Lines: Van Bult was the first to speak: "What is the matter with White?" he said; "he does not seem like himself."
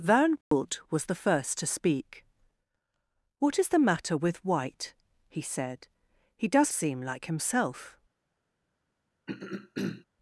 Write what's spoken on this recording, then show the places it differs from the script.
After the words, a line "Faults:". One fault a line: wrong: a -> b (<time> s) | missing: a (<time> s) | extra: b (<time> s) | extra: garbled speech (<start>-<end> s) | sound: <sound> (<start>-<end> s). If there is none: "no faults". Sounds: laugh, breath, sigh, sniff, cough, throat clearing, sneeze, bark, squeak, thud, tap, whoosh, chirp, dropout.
Van Bult was the first to speak: "What is the matter with White?" he said; "he does seem like himself."
Faults:
sound: dropout (0.4-0.5 s)
missing: not (6.7 s)
sound: throat clearing (9.3-10.1 s)